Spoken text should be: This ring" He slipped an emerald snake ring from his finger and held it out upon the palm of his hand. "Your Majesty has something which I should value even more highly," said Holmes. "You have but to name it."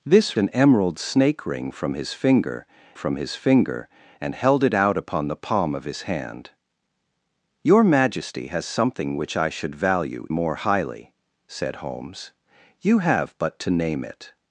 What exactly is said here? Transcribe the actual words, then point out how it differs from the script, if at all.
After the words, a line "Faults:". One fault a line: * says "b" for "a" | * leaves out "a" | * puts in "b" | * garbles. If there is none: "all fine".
This an emerald snake ring from his finger from his finger and held it out upon the palm of his hand. "Your Majesty has something which I should value more highly," said Holmes. "You have but to name it."
Faults:
* leaves out "ring He slipped"
* puts in "from his finger"
* leaves out "even"